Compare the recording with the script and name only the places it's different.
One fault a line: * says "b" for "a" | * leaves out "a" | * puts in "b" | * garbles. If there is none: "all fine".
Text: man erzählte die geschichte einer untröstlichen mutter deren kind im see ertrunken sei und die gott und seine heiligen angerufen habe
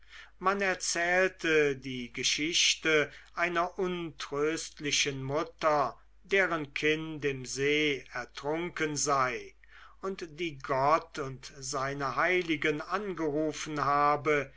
all fine